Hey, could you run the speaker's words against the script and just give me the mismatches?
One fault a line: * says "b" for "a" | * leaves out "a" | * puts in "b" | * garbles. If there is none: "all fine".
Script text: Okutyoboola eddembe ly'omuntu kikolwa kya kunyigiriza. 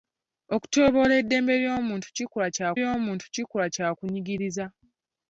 * puts in "ly'omuntu kikolwa kya"